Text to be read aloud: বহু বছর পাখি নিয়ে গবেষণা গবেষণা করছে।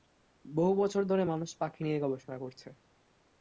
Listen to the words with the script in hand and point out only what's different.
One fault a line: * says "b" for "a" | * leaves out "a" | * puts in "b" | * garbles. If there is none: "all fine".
* puts in "ধরে মানুষ"
* leaves out "গবেষণা"